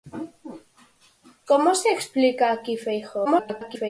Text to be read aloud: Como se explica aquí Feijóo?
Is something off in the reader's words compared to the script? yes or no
yes